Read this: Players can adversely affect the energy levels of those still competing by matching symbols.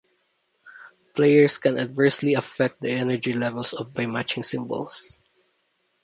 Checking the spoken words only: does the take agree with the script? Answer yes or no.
no